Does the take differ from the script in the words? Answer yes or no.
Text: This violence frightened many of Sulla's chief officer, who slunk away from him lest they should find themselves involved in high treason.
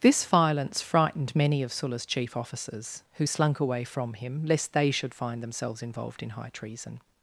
yes